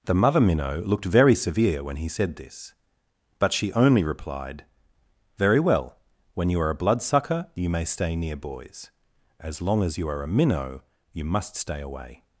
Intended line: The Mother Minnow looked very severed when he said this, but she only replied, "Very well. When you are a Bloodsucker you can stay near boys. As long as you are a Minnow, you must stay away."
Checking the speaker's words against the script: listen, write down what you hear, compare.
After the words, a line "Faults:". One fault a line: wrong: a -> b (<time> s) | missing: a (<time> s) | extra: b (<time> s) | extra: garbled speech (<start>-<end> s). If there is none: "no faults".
The Mother Minnow looked very severe when he said this, but she only replied, "Very well. When you are a Bloodsucker you may stay near boys. As long as you are a Minnow, you must stay away."
Faults:
wrong: severed -> severe (1.4 s)
wrong: can -> may (7.7 s)